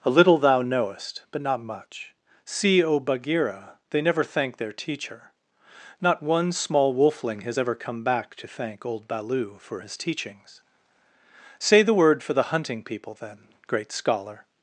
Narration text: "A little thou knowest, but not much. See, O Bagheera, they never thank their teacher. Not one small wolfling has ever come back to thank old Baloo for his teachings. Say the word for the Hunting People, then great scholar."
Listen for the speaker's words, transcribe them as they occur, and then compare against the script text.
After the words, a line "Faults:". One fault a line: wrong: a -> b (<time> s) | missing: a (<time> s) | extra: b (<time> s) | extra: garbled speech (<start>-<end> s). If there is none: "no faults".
"A little thou knowest, but not much. See, O Bagheera, they never thank their teacher. Not one small wolfling has ever come back to thank old Baloo for his teachings. Say the word for the Hunting People, then great scholar."
Faults:
no faults